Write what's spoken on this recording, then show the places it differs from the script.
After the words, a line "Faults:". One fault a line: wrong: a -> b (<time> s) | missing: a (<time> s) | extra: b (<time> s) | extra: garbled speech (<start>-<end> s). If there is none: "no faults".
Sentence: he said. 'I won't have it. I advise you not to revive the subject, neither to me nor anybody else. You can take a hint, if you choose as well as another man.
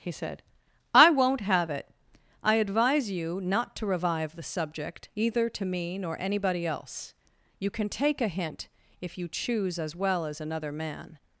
he said. 'I won't have it. I advise you not to revive the subject, either to me nor anybody else. You can take a hint, if you choose as well as another man.
Faults:
wrong: neither -> either (5.2 s)